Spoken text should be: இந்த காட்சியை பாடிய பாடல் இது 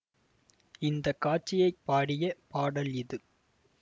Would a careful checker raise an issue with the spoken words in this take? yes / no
no